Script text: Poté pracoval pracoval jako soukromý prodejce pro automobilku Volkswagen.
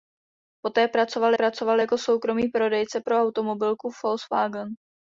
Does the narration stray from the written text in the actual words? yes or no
no